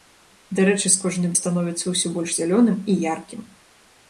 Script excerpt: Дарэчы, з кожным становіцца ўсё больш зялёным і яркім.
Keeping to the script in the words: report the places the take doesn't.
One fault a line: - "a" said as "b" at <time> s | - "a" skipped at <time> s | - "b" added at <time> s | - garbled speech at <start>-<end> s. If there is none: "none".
none